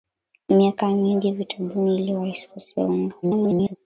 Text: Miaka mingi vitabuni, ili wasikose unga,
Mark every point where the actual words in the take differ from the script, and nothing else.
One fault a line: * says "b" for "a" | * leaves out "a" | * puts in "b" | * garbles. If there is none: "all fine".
* garbles